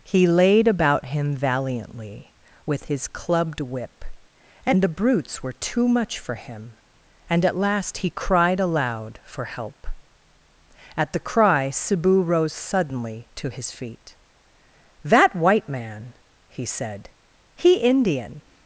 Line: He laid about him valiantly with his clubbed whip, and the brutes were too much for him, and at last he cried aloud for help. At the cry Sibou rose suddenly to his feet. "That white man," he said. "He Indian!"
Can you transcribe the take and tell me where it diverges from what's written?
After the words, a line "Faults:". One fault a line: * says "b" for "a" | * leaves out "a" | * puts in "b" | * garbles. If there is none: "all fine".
He laid about him valiantly with his clubbed whip, and the brutes were too much for him, and at last he cried aloud for help. At the cry Sibou rose suddenly to his feet. "That white man," he said. "He Indian!"
Faults:
all fine